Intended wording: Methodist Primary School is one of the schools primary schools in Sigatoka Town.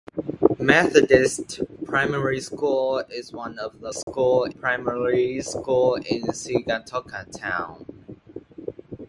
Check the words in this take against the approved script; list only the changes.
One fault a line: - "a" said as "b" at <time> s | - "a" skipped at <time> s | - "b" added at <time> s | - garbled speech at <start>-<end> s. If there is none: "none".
none